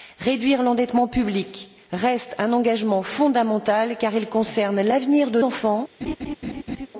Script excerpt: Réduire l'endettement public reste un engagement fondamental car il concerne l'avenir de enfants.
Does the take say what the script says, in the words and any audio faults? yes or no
no